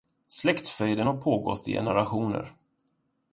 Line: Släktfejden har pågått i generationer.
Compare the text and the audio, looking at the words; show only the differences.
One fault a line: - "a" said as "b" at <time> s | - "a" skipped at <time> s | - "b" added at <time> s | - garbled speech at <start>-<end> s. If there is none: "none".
none